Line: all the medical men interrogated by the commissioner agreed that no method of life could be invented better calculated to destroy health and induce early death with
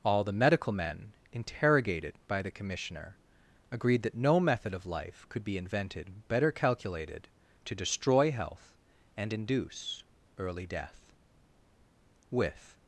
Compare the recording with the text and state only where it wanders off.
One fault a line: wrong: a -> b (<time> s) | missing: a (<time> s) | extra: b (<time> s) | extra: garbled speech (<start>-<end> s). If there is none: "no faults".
no faults